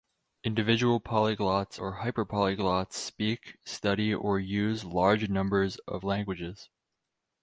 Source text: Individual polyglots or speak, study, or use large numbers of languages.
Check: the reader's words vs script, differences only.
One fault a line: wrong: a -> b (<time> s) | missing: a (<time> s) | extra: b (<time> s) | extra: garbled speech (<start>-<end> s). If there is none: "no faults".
extra: hyperpolyglots (2.0 s)